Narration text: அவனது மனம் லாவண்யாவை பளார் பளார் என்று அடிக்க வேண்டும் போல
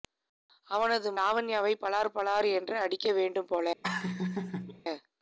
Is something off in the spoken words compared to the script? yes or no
yes